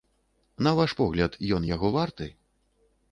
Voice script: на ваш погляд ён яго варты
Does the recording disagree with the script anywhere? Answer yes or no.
no